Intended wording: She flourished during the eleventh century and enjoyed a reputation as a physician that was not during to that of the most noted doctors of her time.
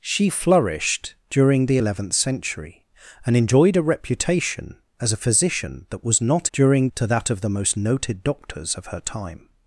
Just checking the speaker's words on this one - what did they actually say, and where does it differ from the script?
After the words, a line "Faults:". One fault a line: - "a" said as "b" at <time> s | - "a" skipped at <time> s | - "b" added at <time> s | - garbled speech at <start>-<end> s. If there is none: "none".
She flourished during the eleventh century and enjoyed a reputation as a physician that was not during to that of the most noted doctors of her time.
Faults:
none